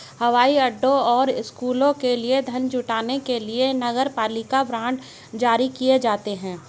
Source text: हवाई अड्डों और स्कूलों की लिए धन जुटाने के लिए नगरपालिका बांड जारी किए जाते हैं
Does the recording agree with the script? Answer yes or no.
no